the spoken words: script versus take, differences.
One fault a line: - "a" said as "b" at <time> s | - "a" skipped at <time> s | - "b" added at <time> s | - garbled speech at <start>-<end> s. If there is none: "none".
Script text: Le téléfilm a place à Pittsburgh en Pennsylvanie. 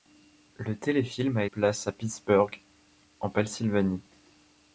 none